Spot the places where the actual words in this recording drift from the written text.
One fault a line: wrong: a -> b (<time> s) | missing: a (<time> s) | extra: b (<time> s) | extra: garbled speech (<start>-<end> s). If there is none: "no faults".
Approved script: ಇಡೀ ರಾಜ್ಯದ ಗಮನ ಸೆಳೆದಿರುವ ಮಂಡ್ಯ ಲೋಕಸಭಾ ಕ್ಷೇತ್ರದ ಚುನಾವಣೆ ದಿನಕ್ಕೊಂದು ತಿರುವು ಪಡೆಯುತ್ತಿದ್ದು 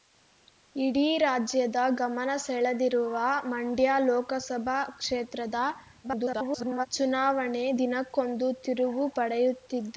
extra: garbled speech (6.0-6.9 s)